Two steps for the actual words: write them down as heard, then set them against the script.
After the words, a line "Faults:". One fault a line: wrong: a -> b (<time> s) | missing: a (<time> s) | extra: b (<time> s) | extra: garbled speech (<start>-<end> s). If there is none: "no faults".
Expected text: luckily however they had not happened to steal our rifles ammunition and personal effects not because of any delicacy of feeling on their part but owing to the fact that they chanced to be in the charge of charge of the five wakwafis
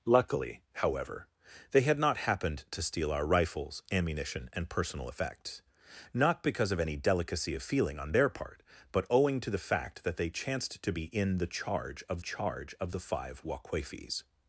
luckily however they had not happened to steal our rifles ammunition and personal effects not because of any delicacy of feeling on their part but owing to the fact that they chanced to be in the charge of charge of the five wakwafis
Faults:
no faults